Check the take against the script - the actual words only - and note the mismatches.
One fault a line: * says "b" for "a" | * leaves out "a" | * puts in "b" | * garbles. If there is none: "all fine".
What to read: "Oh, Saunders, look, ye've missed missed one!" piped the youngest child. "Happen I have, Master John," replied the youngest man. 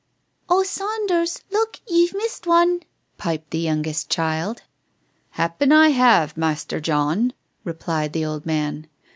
* leaves out "missed"
* says "old" for "youngest"